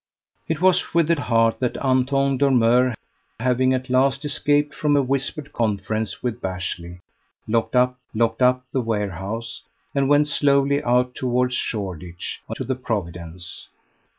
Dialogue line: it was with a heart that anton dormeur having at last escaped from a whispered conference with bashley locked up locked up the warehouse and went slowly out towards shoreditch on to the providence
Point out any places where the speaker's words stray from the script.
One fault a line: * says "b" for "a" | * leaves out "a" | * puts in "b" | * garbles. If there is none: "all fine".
all fine